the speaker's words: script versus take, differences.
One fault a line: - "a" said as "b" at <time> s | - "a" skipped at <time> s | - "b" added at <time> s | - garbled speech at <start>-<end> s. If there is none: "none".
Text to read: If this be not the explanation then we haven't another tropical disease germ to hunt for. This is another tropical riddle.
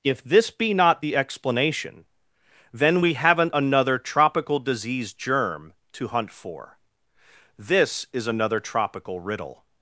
none